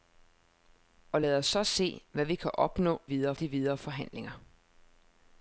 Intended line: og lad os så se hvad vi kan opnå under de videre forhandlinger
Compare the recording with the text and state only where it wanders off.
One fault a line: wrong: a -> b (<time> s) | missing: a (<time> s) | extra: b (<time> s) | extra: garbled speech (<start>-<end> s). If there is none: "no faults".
wrong: under -> videre (3.0 s)